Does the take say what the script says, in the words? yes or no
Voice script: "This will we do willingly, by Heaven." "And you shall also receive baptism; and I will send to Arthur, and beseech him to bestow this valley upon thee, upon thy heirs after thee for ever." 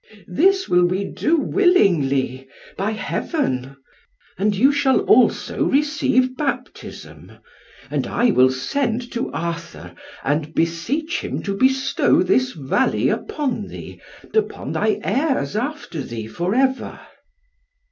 yes